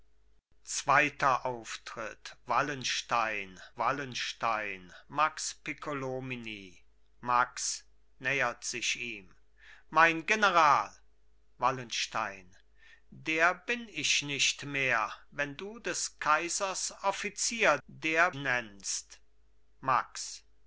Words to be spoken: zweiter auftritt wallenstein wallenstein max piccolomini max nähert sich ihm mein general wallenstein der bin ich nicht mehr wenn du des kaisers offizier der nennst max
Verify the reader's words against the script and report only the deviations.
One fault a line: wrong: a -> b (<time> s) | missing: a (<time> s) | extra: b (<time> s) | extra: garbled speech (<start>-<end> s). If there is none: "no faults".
no faults